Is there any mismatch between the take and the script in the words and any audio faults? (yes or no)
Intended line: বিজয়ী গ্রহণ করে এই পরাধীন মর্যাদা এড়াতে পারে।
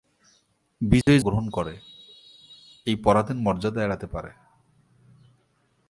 yes